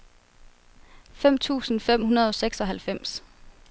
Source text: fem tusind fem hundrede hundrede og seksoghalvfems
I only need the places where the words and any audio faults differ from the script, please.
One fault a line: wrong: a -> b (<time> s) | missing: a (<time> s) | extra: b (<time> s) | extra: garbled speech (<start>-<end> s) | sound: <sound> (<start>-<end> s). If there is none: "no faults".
missing: hundrede (2.3 s)